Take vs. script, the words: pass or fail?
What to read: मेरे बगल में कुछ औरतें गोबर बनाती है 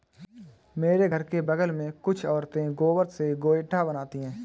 fail